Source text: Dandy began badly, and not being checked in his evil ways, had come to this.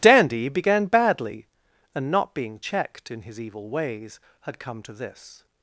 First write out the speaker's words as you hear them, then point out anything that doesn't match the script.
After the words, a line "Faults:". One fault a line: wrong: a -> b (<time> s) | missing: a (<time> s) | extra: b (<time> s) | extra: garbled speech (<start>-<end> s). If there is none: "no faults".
Dandy began badly, and not being checked in his evil ways, had come to this.
Faults:
no faults